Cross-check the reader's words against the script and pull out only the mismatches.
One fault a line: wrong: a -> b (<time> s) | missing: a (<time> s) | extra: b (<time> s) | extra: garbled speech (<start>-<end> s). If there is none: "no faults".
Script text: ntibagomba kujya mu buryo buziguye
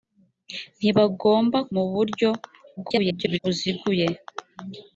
missing: kujya (1.6 s)
extra: garbled speech (2.8-3.4 s)